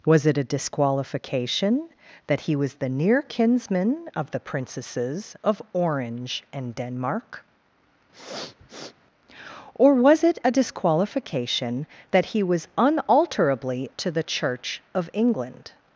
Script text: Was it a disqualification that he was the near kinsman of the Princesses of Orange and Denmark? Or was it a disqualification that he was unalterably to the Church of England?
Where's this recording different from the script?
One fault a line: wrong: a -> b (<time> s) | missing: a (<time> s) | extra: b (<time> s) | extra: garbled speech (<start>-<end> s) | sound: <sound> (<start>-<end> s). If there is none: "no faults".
sound: sniff (8.1-8.9 s)